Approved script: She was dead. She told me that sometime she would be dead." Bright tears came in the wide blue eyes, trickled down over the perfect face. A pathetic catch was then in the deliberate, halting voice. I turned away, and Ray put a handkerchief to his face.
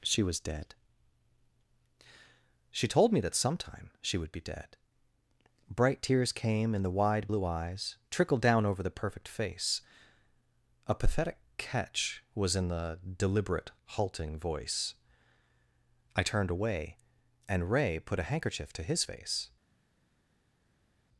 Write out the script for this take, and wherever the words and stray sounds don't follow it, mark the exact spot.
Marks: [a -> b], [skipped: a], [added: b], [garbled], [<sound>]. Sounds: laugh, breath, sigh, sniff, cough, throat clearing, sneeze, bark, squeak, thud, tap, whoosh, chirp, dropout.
She was dead. She told me that sometime she would be dead." Bright tears came in the wide blue eyes, trickled down over the perfect face. A pathetic catch was [skipped: then] in the deliberate, halting voice. I turned away, and Ray put a handkerchief to his face.